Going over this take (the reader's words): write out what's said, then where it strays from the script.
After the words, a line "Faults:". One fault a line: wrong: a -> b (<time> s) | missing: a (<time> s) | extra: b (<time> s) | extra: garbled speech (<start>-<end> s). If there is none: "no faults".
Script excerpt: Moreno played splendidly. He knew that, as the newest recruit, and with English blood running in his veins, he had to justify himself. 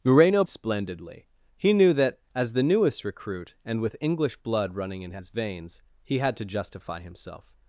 Moreno splendidly. He knew that, as the newest recruit, and with English blood running in his veins, he had to justify himself.
Faults:
missing: played (0.4 s)